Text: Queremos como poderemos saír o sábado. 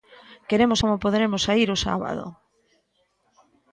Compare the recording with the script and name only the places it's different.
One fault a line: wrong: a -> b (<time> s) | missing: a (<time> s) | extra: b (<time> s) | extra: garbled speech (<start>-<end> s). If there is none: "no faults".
no faults